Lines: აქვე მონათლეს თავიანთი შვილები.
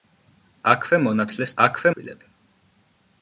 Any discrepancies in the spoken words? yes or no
yes